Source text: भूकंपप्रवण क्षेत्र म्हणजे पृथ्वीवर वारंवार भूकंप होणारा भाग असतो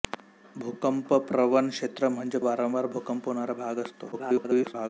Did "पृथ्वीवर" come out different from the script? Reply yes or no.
yes